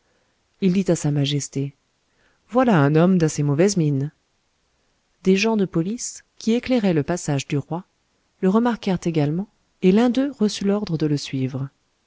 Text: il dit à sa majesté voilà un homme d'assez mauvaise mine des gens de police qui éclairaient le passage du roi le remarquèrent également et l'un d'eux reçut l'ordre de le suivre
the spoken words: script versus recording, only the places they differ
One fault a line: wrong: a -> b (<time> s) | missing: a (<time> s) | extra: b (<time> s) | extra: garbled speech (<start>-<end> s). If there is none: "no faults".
no faults